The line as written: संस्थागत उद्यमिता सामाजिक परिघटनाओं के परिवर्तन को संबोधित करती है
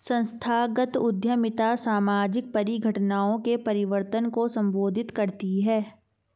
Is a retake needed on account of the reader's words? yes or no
no